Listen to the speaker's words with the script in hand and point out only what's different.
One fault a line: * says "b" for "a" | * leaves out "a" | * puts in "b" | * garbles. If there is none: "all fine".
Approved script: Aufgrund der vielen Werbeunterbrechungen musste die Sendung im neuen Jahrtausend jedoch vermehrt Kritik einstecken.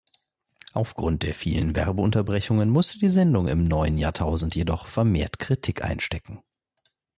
all fine